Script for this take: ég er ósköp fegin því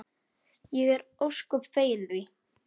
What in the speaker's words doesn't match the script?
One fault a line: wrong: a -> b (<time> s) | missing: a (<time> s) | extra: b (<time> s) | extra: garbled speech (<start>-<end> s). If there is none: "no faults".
no faults